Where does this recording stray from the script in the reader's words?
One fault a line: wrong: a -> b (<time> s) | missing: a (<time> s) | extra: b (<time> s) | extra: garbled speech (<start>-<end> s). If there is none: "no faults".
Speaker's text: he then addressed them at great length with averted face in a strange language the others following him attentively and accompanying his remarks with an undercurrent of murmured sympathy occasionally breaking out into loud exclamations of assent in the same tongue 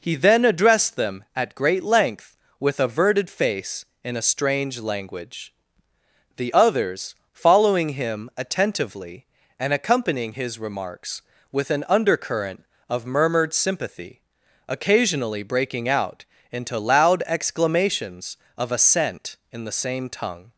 no faults